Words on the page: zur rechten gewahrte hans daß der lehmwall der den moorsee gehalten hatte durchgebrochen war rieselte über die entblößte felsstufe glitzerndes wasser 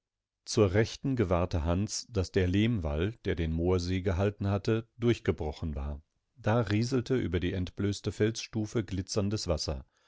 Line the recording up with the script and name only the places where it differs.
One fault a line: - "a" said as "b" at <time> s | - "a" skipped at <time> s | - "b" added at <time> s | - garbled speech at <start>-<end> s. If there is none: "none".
- "da" added at 6.4 s